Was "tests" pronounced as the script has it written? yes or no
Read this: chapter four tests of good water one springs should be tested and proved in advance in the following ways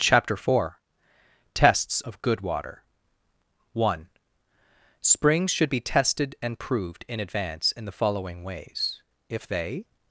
yes